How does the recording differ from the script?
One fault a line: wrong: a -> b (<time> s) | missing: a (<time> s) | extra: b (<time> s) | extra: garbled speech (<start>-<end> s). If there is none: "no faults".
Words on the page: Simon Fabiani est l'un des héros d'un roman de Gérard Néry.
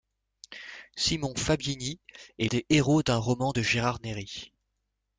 missing: l'un (2.5 s)